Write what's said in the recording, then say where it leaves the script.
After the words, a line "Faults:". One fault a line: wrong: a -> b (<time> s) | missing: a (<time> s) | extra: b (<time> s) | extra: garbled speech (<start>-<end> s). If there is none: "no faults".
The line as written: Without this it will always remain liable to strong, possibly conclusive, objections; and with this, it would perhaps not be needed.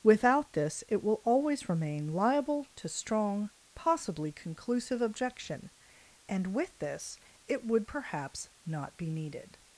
Without this it will always remain liable to strong, possibly conclusive, objection; and with this, it would perhaps not be needed.
Faults:
wrong: objections -> objection (5.0 s)